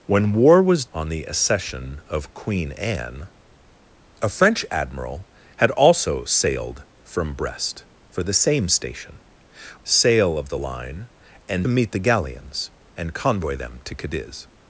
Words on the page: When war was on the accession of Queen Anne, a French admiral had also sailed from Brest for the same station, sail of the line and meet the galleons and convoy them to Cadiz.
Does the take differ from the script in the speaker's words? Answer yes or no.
no